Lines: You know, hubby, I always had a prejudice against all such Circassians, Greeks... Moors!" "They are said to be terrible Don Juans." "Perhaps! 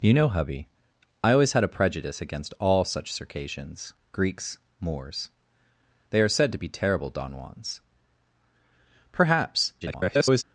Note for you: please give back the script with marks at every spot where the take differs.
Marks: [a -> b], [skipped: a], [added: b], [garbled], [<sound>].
You know, hubby, I always had a prejudice against all such Circassians, Greeks... Moors!" "They are said to be terrible Don Juans." "Perhaps! [garbled]